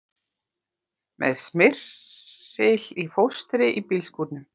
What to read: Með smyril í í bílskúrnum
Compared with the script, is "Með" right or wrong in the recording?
right